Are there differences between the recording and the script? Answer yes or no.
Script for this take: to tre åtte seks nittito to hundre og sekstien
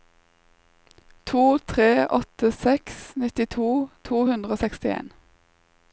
no